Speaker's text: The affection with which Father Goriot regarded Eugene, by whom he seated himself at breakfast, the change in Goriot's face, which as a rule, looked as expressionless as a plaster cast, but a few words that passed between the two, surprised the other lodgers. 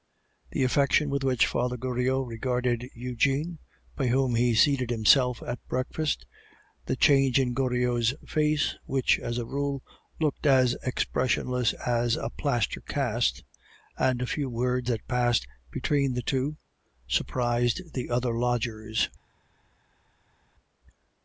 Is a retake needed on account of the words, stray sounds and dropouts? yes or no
yes